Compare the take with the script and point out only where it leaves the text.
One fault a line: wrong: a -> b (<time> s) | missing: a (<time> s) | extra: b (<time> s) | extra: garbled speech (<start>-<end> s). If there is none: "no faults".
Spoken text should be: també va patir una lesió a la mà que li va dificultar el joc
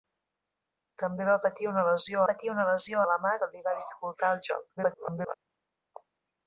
extra: patir una lesió (2.3 s)
extra: garbled speech (4.8-5.3 s)